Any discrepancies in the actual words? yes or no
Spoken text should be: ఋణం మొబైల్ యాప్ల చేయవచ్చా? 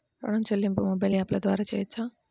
yes